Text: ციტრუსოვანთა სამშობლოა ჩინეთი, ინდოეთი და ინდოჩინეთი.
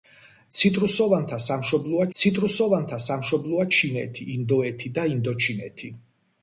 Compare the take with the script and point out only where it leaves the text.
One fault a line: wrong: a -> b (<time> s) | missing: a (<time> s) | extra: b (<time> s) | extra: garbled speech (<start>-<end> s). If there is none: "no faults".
extra: ციტრუსოვანთა სამშობლოა (2.2 s)